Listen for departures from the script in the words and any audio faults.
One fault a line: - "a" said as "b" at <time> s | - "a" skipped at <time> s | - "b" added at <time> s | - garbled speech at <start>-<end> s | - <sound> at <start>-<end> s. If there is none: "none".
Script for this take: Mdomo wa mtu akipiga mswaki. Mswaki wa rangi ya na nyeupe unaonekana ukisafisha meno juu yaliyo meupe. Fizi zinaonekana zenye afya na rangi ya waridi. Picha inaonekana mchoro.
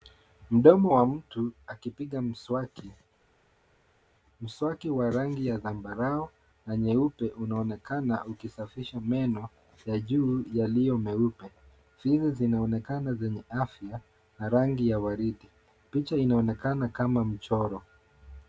- "zambarau" added at 5.6 s
- "ya" added at 9.9 s
- "kama" added at 16.9 s